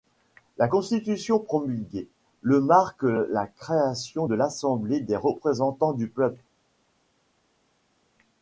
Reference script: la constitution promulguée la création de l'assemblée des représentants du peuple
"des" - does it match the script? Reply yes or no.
yes